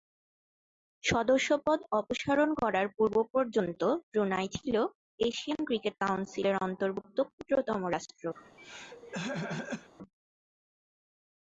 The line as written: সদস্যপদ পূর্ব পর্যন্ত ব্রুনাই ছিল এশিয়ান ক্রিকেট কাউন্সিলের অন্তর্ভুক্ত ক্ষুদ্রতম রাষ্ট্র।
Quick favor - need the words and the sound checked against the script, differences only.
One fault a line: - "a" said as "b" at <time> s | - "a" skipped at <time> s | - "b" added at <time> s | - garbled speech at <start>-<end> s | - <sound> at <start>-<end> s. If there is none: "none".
- "অপসারণ করার" added at 2.0 s
- throat clearing at 8.4-9.9 s